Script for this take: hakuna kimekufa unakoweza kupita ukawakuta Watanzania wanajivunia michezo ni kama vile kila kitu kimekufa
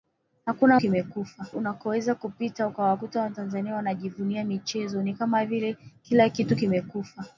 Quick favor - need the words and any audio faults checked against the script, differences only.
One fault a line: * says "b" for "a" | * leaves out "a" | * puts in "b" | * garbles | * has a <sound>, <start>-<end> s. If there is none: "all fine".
all fine